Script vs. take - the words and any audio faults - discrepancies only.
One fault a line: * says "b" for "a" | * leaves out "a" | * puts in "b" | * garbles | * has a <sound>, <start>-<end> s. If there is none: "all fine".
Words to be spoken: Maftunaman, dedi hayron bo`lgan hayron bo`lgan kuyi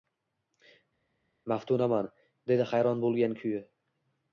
* leaves out "hayron bo`lgan"